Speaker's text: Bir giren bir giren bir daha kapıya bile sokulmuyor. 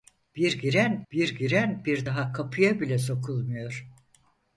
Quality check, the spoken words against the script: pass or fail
pass